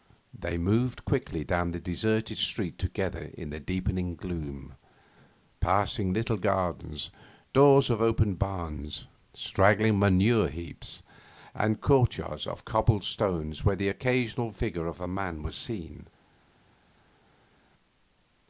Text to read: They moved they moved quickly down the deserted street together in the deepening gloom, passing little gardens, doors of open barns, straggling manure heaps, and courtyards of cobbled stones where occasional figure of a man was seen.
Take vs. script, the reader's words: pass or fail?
fail